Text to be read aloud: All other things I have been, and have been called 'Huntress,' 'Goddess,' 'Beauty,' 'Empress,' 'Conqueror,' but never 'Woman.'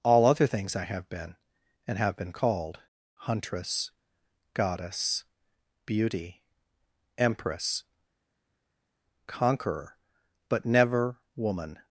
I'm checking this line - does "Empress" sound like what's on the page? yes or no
yes